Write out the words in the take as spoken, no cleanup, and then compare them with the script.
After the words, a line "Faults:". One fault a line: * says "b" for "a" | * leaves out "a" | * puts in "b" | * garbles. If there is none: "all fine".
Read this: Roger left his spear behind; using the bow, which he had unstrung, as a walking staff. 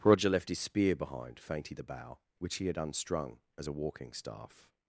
Roger left his spear behind; fainty the bow, which he had unstrung, as a walking staff.
Faults:
* says "fainty" for "using"